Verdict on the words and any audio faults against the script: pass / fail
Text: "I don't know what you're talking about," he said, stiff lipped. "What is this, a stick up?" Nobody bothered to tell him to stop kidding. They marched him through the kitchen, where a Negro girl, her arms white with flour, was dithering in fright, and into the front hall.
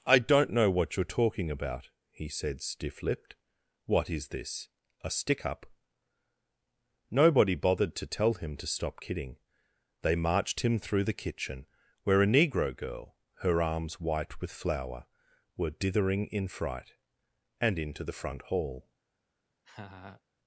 fail